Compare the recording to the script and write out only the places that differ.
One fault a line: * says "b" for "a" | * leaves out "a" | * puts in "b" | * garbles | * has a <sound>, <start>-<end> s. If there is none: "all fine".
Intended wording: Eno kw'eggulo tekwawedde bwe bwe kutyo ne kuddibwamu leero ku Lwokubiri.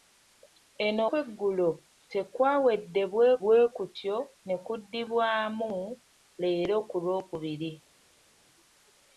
all fine